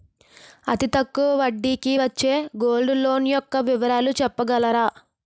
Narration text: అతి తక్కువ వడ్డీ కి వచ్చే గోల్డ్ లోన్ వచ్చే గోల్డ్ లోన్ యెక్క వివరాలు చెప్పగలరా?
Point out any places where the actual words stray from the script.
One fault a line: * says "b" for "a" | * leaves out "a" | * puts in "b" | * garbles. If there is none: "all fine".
* leaves out "వచ్చే గోల్డ్ లోన్"